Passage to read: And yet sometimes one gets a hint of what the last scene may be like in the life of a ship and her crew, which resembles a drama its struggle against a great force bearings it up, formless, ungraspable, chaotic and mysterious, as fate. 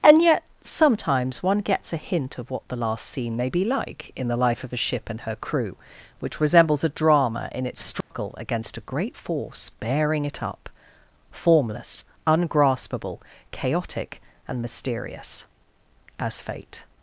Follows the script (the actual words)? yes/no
no